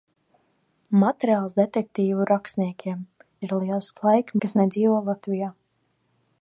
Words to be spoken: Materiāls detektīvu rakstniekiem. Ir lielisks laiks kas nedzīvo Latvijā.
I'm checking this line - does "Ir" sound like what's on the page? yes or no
yes